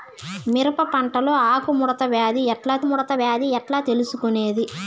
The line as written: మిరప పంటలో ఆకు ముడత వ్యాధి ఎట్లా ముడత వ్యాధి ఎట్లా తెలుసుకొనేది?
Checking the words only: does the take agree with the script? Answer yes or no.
yes